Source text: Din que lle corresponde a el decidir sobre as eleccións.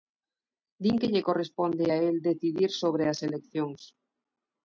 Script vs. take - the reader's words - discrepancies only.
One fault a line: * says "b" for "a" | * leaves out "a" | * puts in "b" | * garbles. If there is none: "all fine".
all fine